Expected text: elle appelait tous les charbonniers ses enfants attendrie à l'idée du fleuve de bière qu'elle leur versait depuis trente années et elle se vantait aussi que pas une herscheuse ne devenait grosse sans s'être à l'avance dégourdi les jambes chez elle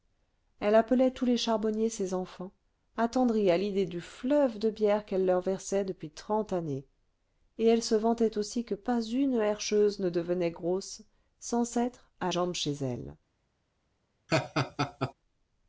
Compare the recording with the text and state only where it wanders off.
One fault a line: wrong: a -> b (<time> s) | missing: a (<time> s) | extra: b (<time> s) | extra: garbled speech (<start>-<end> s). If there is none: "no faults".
missing: l'avance dégourdi les (12.3 s)